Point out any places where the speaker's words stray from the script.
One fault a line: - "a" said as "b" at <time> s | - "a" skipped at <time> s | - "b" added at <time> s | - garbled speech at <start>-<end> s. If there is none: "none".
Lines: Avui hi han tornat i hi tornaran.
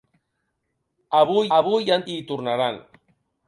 - "avui" added at 1.6 s
- "tornat" skipped at 2.1 s